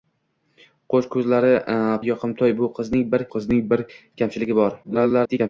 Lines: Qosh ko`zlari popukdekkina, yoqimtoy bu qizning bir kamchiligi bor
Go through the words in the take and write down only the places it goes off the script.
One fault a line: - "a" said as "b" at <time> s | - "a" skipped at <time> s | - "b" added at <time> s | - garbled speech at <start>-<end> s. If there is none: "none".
- "popukdekkina" skipped at 1.5 s
- "qizning bir" added at 3.4 s
- garbled speech at 4.8-5.5 s